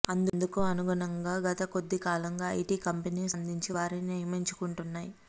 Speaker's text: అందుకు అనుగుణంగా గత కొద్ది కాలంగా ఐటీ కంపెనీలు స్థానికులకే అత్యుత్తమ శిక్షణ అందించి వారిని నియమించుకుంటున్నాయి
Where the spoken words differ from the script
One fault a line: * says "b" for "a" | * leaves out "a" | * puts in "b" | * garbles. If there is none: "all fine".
* leaves out "స్థానికులకే అత్యుత్తమ శిక్షణ"